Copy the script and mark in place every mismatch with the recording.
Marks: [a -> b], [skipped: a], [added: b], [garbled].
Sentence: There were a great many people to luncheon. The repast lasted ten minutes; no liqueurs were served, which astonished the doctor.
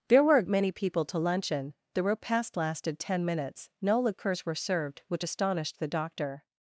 There were a [skipped: great] many people to luncheon. The repast lasted ten minutes; no liqueurs were served, which astonished the doctor.